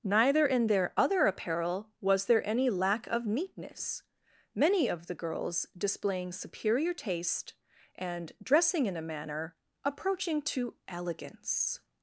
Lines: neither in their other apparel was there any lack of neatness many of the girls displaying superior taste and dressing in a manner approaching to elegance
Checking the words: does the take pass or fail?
pass